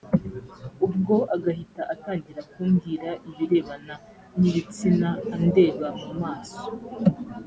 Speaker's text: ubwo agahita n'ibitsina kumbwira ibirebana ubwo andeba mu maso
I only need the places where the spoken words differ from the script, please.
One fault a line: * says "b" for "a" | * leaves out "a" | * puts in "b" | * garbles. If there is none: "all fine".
* says "atangira" for "n'ibitsina"
* says "n'ibitsina" for "ubwo"